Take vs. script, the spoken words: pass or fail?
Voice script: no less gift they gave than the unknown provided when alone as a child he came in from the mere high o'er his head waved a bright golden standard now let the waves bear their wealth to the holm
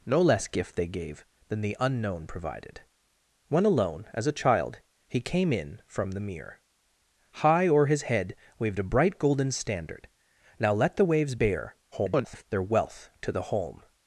fail